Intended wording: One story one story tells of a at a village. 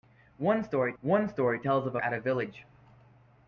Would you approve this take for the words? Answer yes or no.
yes